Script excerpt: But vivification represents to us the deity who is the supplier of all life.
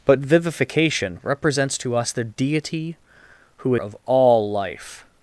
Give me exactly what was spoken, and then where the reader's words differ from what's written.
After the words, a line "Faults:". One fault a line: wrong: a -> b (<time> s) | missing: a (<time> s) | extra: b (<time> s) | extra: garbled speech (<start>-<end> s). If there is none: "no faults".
But vivification represents to us the deity who of all life.
Faults:
missing: is the supplier (3.8 s)